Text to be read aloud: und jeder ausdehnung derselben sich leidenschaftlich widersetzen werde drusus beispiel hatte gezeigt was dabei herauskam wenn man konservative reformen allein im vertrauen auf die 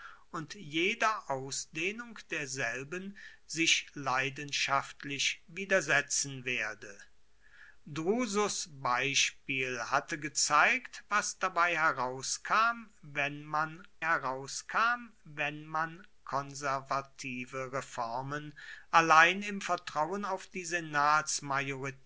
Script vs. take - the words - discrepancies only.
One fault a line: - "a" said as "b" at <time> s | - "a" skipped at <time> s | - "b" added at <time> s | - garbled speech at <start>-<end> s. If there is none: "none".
- "herauskam wenn man" added at 14.0 s